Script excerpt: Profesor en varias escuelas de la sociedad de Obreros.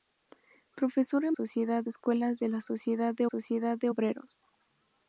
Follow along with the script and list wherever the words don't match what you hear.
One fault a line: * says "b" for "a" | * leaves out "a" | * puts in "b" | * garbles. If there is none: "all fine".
* says "sociedad" for "varias"
* puts in "sociedad de"